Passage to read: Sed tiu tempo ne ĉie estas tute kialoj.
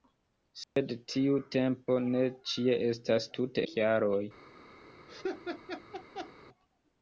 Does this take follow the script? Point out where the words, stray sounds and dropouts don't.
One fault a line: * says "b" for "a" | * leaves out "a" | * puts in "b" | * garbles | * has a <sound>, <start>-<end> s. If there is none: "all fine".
* has a dropout, 0.6-0.8 s
* has a laugh, 5.1-6.3 s